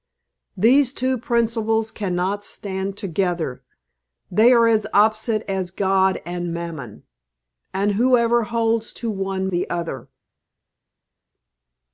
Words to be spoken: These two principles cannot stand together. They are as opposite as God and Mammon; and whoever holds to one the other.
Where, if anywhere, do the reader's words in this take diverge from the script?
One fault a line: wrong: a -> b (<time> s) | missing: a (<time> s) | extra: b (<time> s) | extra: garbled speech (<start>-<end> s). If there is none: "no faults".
no faults